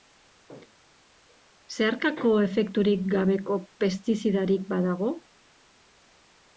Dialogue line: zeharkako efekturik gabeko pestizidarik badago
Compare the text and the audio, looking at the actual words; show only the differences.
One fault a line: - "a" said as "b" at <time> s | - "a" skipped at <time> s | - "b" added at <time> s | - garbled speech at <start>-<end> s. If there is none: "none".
none